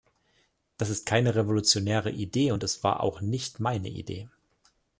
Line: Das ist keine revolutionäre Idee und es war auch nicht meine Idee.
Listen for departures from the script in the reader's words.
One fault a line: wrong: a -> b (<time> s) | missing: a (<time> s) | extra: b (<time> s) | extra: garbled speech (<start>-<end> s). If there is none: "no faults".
no faults